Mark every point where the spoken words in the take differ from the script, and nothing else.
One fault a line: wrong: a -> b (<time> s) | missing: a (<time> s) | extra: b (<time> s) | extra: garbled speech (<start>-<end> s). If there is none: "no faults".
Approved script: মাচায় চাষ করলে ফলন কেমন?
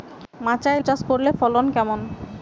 no faults